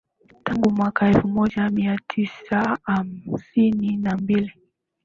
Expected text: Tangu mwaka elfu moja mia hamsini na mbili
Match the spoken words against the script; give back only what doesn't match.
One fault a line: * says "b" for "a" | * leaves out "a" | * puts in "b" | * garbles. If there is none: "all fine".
* puts in "tisa"